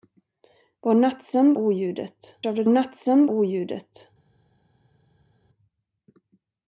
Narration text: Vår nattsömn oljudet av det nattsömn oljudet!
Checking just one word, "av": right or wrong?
right